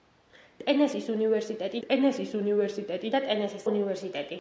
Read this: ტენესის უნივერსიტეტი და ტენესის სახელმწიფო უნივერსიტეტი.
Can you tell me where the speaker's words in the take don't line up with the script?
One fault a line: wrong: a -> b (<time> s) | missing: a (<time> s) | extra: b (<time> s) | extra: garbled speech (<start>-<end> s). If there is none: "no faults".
extra: ტენესის უნივერსიტეტი (1.8 s)
missing: სახელმწიფო (3.7 s)